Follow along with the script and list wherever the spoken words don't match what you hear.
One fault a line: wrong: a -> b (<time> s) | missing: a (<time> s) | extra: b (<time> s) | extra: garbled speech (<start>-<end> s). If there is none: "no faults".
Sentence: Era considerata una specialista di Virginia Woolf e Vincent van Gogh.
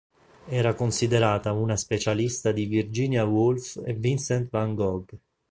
no faults